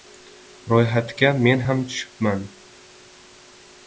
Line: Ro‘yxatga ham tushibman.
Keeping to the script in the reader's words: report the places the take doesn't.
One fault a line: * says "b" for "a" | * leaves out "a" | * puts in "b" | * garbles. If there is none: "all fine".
* puts in "men"